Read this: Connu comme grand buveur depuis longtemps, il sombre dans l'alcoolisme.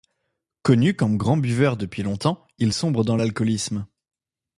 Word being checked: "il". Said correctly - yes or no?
yes